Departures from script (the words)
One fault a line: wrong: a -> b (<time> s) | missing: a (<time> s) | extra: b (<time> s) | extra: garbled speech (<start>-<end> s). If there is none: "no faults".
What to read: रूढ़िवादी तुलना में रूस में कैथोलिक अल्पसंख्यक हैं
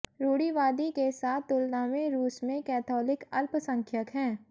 extra: के साथ (0.9 s)